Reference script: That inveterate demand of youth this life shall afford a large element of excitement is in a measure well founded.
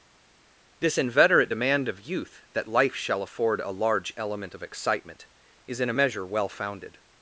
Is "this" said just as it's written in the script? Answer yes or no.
no